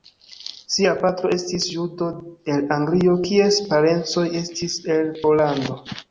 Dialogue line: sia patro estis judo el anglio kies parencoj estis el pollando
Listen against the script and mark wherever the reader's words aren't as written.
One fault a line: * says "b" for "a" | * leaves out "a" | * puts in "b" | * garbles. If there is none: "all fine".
all fine